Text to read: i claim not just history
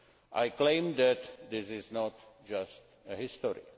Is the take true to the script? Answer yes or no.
no